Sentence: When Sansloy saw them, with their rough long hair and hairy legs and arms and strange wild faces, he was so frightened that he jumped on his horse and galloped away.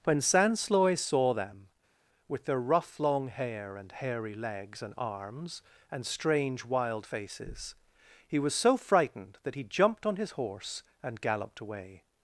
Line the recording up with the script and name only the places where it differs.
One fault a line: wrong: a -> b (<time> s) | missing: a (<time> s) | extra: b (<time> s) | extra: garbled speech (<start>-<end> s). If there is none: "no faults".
no faults